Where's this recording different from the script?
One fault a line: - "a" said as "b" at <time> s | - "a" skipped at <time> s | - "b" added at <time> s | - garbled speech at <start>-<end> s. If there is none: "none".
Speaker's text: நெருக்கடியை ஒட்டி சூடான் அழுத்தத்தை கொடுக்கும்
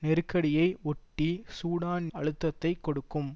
none